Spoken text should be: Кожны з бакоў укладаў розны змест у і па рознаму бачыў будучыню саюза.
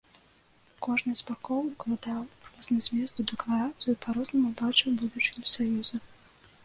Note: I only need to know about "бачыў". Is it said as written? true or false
true